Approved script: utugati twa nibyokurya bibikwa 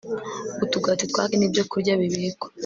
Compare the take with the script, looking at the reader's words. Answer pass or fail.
pass